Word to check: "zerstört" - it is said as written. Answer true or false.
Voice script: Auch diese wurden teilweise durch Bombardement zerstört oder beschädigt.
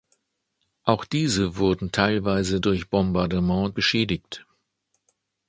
false